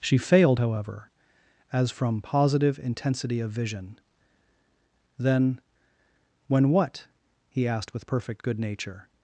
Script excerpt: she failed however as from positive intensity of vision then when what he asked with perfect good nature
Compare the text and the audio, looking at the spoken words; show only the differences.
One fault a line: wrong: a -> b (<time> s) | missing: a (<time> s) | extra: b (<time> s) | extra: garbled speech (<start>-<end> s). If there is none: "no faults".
no faults